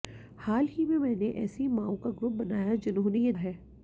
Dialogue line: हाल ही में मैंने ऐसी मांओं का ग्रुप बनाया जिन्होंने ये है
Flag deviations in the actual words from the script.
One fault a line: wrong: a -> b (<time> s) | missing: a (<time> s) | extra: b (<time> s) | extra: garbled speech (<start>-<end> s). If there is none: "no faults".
no faults